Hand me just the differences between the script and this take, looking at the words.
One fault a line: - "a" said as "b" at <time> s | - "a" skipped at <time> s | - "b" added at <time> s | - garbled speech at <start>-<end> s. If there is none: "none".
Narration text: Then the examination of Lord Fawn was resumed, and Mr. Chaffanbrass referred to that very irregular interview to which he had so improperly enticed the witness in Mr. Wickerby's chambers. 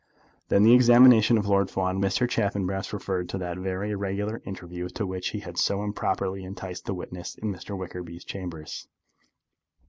- "was resumed and" skipped at 2.0 s